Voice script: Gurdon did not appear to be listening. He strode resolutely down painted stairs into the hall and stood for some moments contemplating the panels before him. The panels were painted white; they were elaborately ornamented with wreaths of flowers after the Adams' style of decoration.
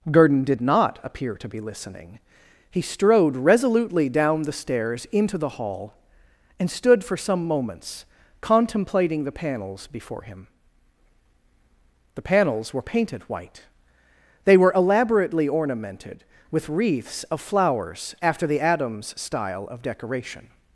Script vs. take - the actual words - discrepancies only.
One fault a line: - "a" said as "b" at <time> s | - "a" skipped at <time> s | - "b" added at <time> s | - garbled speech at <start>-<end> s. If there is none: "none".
- "painted" said as "the" at 4.4 s